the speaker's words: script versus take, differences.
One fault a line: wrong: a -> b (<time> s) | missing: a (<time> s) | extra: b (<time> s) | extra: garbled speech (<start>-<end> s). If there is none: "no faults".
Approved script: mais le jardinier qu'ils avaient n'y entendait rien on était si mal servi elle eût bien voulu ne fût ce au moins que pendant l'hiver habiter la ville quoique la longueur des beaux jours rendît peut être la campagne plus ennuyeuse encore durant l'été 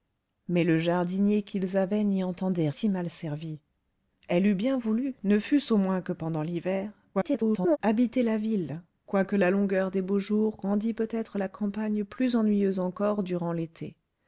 missing: rien on était (2.7 s)
extra: garbled speech (7.1-7.8 s)